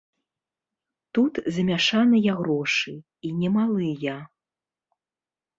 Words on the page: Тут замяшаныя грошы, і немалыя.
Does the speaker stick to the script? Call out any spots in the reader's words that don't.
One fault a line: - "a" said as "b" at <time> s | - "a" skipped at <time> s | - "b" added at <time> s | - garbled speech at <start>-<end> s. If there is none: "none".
none